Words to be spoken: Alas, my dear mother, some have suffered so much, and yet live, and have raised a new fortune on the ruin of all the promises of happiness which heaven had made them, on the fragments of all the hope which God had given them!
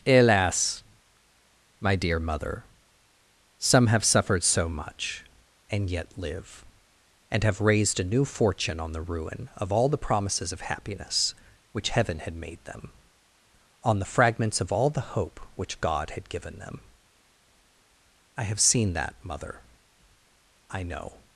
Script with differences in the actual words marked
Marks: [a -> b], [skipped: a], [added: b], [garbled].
Alas, my dear mother, some have suffered so much, and yet live, and have raised a new fortune on the ruin of all the promises of happiness which heaven had made them, on the fragments of all the hope which God had given them! [added: I have seen that mother I know]